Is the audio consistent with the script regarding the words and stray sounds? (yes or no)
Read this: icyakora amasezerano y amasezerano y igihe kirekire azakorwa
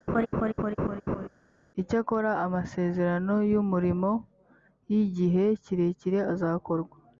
no